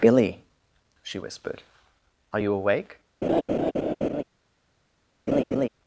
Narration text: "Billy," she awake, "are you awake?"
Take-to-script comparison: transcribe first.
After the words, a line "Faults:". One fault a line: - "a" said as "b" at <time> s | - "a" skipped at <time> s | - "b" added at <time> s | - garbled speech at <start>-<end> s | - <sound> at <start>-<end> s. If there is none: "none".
"Billy," she whispered, "are you awake?"
Faults:
- "awake" said as "whispered" at 1.2 s
- laugh at 3.2-4.2 s
- laugh at 5.3-5.7 s